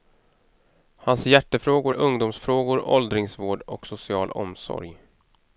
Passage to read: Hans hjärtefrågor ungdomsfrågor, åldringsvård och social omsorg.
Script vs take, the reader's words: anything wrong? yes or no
no